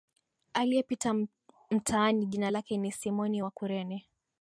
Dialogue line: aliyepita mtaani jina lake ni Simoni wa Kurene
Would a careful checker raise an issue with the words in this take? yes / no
no